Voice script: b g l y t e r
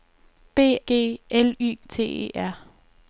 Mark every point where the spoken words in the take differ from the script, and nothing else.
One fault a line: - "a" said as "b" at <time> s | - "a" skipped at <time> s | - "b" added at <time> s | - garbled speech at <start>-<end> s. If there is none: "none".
none